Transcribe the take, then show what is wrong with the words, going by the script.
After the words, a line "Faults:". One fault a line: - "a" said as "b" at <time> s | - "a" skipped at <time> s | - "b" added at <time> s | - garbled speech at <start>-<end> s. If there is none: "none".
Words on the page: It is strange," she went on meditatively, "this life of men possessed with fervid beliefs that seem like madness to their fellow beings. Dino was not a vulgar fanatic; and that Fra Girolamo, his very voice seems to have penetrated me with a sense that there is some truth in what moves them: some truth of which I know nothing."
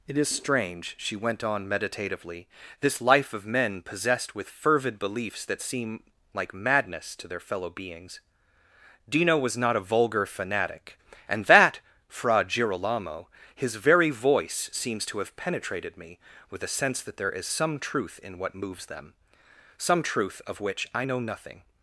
It is strange," she went on meditatively, "this life of men possessed with fervid beliefs that seem like madness to their fellow beings. Dino was not a vulgar fanatic; and that Fra Girolamo, his very voice seems to have penetrated me with a sense that there is some truth in what moves them: some truth of which I know nothing."
Faults:
none